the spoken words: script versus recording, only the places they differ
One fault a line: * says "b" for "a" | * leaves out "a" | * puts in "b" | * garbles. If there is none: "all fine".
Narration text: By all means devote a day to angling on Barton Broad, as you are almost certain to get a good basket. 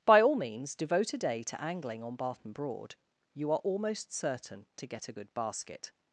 * leaves out "as"